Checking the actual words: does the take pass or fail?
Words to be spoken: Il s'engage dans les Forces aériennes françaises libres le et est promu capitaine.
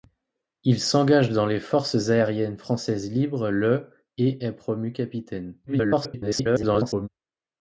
fail